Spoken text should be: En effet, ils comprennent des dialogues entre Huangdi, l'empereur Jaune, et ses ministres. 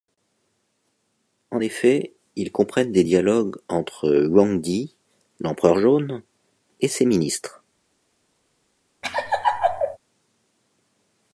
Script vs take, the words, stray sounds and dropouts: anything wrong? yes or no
yes